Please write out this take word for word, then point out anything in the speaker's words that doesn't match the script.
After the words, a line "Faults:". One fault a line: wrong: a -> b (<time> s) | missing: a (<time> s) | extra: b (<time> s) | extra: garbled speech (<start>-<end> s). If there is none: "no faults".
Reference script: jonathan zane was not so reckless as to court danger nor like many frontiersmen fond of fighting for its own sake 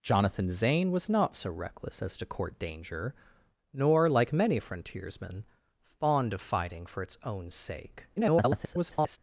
jonathan zane was not so reckless as to court danger nor like many frontiersmen fond of fighting for its own sake [garbled]
Faults:
extra: garbled speech (8.2-9.2 s)